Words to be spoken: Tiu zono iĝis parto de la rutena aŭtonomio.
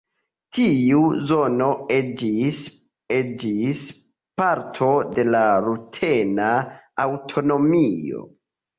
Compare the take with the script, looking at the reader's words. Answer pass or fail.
fail